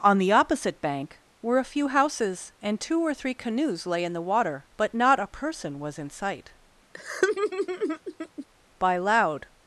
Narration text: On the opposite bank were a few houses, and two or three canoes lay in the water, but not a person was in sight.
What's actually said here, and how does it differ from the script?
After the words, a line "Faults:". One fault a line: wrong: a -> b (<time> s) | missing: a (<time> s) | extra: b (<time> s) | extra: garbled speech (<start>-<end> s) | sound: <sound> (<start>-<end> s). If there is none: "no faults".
On the opposite bank were a few houses, and two or three canoes lay in the water, but not a person was in sight. By loud
Faults:
sound: laugh (6.9-8.5 s)
extra: By loud (8.8 s)